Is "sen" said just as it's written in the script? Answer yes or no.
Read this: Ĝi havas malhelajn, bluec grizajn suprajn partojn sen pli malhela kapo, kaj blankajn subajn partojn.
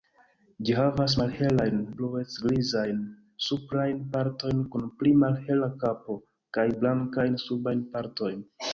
no